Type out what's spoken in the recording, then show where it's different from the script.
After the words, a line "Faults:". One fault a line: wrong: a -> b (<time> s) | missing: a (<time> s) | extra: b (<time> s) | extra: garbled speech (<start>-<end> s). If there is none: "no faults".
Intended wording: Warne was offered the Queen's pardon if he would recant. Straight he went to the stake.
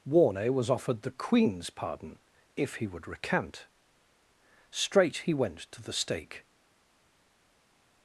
Warne was offered the Queen's pardon if he would recant. Straight he went to the stake.
Faults:
no faults